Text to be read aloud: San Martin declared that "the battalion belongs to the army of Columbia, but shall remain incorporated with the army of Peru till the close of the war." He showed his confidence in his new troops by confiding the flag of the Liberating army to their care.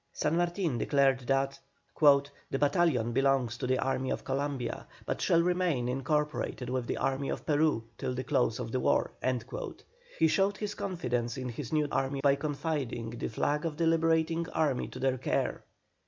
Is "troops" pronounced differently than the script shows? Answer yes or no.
yes